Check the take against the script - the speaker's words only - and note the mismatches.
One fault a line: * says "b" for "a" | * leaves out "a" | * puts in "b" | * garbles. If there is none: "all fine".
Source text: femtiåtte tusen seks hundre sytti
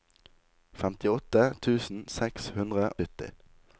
all fine